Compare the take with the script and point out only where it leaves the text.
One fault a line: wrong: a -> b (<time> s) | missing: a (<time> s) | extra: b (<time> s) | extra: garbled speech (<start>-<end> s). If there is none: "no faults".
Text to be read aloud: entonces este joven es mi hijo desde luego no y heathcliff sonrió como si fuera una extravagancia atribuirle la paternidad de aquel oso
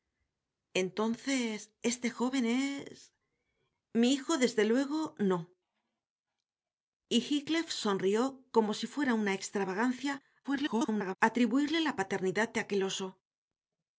extra: garbled speech (10.4-11.2 s)